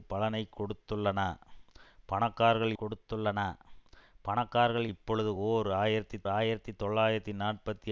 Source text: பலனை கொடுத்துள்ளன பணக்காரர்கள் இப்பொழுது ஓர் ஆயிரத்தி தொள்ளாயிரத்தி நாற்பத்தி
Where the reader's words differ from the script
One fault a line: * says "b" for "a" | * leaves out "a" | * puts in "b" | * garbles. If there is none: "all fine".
* puts in "கொடுத்துள்ளன பணக்காரர்கள்"
* puts in "ஆயிரத்தி"